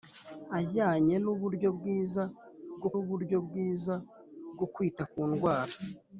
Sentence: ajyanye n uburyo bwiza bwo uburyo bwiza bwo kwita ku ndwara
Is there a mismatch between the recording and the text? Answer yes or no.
no